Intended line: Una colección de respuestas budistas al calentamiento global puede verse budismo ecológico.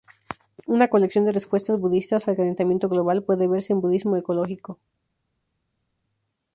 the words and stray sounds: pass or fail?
fail